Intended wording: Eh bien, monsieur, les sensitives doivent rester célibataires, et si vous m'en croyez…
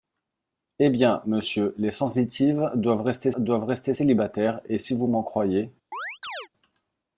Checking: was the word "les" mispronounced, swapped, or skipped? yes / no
no